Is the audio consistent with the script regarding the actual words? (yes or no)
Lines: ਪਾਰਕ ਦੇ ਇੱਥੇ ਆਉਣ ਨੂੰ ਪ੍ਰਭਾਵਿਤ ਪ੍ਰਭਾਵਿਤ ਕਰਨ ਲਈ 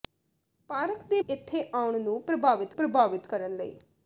yes